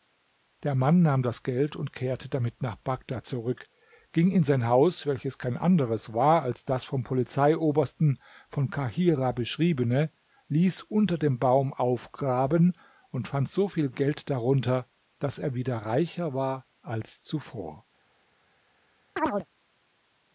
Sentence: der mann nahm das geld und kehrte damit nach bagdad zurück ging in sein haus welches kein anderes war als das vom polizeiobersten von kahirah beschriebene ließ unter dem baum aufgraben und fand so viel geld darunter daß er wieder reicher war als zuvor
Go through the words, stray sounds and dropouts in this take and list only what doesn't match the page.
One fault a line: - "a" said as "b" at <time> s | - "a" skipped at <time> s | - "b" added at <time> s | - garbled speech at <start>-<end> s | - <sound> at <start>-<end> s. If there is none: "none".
- chirp at 19.2-19.5 s